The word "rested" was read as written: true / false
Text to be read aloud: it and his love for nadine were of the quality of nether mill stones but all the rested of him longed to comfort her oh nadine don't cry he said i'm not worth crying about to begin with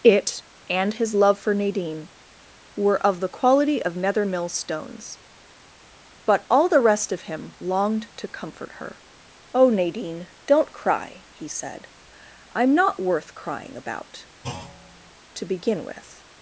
false